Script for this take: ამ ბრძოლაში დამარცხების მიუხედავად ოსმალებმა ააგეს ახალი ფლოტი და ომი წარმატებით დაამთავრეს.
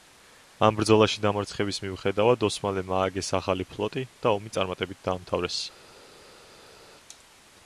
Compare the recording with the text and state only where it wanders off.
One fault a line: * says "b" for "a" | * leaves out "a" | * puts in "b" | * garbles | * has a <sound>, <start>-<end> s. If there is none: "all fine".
all fine